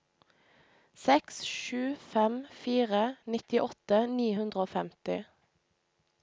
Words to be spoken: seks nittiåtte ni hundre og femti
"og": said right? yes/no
yes